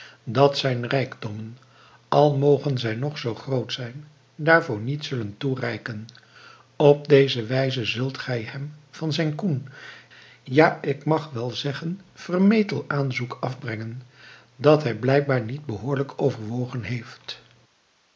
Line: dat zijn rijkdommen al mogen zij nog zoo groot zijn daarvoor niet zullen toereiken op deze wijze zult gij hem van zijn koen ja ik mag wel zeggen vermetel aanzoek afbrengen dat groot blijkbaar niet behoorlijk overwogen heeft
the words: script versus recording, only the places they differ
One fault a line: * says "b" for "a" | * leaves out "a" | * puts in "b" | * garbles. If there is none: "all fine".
* says "hij" for "groot"